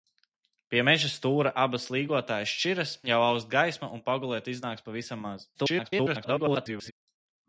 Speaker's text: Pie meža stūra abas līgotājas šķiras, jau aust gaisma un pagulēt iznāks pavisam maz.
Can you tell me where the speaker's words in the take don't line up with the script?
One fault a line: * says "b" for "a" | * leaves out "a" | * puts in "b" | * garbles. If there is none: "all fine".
* garbles